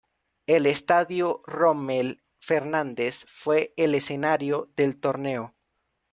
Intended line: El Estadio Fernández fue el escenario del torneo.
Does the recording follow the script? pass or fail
fail